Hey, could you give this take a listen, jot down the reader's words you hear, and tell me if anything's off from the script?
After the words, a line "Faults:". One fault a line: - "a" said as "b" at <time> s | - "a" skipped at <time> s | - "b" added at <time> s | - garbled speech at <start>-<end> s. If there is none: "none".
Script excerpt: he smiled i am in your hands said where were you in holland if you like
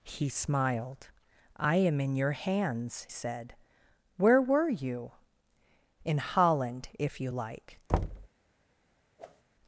he smiled i am in your hands said where were you in holland if you like
Faults:
none